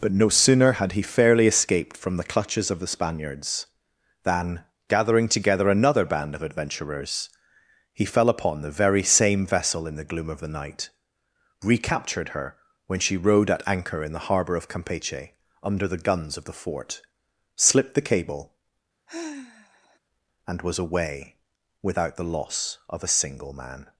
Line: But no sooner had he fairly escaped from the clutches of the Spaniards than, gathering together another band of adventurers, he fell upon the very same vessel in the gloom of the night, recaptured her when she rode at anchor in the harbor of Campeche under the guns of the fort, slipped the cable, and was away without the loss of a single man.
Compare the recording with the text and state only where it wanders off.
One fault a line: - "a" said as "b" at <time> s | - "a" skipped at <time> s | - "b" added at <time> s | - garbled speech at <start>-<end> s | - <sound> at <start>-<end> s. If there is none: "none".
- sigh at 19.1-20.0 s